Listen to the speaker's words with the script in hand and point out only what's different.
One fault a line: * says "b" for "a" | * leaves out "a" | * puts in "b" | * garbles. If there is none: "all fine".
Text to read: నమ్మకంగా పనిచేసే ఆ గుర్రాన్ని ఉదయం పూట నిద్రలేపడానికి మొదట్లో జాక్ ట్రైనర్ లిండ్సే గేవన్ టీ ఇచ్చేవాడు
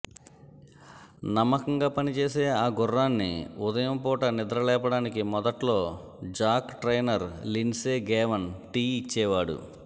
all fine